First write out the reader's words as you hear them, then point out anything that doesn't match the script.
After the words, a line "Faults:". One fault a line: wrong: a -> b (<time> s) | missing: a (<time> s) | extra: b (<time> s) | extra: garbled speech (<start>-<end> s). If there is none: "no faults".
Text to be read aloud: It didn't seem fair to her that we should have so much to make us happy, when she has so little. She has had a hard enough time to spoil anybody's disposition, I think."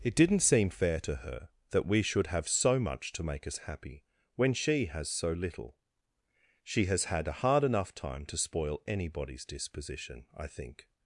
It didn't seem fair to her that we should have so much to make us happy, when she has so little. She has had a hard enough time to spoil anybody's disposition, I think."
Faults:
no faults